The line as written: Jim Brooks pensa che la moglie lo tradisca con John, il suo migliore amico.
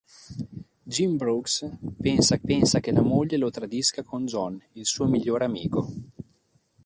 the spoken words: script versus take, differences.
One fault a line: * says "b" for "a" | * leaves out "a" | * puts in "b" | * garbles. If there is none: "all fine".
* puts in "pensa"